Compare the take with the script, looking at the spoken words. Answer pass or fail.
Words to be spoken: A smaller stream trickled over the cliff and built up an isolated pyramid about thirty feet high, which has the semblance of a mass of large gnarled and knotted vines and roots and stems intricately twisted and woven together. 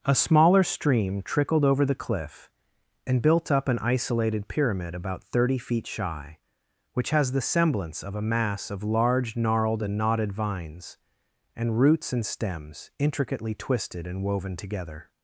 fail